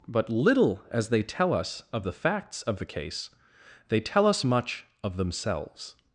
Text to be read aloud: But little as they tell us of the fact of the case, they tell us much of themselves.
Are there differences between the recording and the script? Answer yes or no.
yes